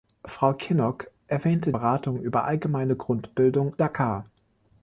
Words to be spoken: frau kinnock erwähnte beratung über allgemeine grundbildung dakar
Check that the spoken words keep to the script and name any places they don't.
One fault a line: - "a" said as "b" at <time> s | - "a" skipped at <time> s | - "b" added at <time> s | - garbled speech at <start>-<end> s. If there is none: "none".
none